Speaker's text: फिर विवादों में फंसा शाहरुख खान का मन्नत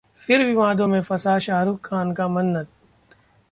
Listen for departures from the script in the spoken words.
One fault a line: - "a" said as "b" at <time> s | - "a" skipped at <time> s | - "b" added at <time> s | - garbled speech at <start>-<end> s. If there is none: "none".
none